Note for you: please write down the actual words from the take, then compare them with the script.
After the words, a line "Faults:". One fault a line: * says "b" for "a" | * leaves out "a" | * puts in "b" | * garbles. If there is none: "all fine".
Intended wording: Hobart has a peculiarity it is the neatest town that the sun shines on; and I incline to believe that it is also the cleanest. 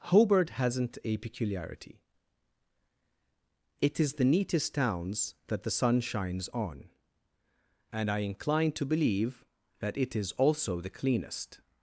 Hobart hasn't a peculiarity it is the neatest towns that the sun shines on; and I incline to believe that it is also the cleanest.
Faults:
* says "hasn't" for "has"
* says "towns" for "town"